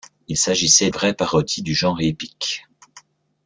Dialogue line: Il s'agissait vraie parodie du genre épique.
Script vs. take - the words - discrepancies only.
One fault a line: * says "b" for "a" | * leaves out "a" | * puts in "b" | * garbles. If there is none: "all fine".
all fine